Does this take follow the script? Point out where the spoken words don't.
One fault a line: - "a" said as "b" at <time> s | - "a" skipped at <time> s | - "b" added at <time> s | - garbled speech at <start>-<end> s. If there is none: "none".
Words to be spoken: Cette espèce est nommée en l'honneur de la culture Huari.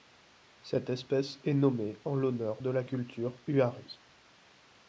none